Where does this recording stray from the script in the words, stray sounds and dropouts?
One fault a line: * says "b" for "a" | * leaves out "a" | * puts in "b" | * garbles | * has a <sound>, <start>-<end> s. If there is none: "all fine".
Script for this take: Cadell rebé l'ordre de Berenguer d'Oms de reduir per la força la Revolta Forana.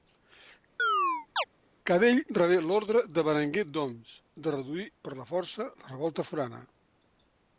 * has a chirp, 0.8-1.4 s